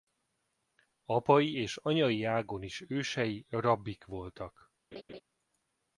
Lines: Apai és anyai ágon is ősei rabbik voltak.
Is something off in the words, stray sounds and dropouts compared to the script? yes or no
yes